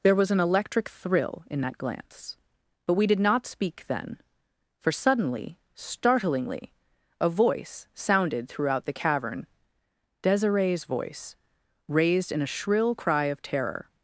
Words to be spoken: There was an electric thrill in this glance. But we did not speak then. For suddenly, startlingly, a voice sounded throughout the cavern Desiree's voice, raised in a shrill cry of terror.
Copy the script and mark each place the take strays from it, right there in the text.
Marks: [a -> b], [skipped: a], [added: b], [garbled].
There was an electric thrill in [this -> that] glance. But we did not speak then. For suddenly, startlingly, a voice sounded throughout the cavern Desiree's voice, raised in a shrill cry of terror.